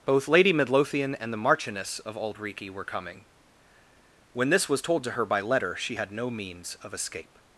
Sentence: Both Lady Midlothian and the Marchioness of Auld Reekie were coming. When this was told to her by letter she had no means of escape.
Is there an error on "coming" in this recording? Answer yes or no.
no